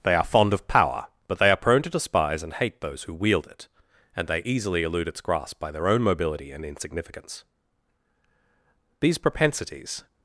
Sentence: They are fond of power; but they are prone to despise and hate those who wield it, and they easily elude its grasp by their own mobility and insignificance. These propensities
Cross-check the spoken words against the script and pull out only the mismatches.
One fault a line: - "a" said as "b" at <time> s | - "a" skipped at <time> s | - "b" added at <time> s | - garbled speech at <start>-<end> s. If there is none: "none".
none